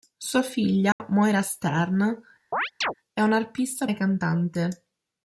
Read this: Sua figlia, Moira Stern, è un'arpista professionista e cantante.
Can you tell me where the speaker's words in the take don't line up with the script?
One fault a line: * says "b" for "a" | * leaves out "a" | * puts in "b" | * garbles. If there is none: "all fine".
* leaves out "professionista"